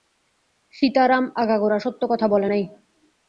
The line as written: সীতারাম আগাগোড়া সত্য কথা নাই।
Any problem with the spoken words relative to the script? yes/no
yes